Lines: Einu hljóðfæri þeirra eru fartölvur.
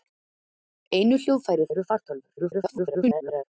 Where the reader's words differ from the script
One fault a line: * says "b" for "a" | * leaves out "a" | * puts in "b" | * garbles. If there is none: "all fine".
* leaves out "þeirra"
* garbles